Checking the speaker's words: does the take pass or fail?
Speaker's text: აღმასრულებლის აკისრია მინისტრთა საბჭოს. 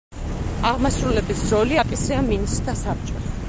fail